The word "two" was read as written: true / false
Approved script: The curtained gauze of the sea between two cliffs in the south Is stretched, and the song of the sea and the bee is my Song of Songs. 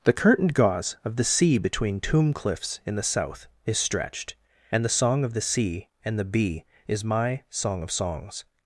false